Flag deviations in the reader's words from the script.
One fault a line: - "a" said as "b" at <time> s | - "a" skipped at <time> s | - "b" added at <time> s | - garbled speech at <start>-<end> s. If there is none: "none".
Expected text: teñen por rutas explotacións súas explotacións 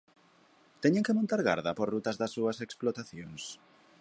- "que montar garda" added at 1.1 s
- "explotacións" said as "das" at 2.2 s